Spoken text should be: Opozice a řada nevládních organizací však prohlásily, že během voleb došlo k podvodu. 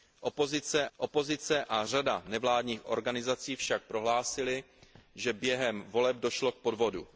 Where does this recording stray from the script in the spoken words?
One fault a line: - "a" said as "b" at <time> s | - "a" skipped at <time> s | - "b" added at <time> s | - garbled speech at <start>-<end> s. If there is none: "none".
- "opozice" added at 1.0 s